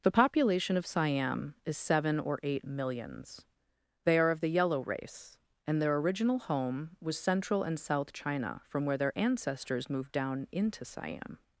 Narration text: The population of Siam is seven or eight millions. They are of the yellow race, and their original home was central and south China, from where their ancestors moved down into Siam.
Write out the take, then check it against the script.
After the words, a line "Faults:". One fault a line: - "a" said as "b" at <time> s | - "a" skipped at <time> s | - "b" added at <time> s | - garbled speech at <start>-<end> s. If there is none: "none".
The population of Siam is seven or eight millions. They are of the yellow race, and their original home was central and south China, from where their ancestors moved down into Siam.
Faults:
none